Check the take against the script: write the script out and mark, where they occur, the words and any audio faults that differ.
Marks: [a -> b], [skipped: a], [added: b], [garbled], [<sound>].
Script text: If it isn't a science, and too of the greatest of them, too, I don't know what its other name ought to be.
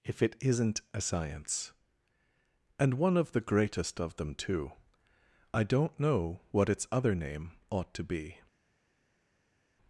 If it isn't a science, and [too -> one] of the greatest of them, too, I don't know what its other name ought to be.